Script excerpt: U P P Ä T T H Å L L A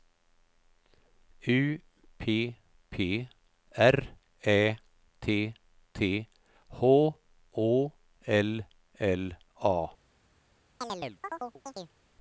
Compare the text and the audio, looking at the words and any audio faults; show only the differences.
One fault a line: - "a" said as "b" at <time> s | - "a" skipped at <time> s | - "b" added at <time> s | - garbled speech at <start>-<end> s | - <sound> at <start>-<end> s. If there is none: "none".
- "R" added at 3.8 s
- chirp at 10.8-12.0 s